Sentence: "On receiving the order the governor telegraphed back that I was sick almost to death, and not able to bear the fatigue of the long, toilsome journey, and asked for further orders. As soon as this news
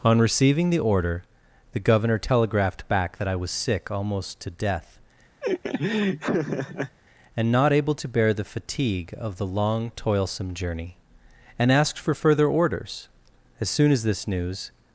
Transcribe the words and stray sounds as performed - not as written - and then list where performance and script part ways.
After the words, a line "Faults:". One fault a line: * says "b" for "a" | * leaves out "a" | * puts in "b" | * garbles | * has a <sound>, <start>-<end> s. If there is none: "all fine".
"On receiving the order the governor telegraphed back that I was sick almost to death, and not able to bear the fatigue of the long, toilsome journey, and asked for further orders. As soon as this news
Faults:
* has a laugh, 5.4-7.0 s